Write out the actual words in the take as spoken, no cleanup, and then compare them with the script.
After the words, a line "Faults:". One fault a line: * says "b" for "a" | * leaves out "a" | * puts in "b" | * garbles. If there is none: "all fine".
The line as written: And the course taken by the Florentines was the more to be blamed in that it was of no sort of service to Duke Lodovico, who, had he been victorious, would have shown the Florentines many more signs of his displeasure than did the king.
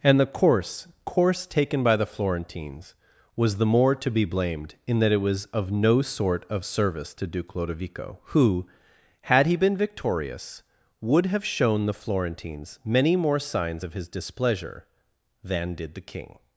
And the course course taken by the Florentines was the more to be blamed in that it was of no sort of service to Duke Lodovico, who, had he been victorious, would have shown the Florentines many more signs of his displeasure than did the king.
Faults:
* puts in "course"